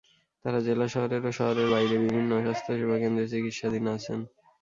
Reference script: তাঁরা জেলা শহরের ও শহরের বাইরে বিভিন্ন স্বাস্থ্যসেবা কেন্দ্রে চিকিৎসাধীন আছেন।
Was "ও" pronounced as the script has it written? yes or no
yes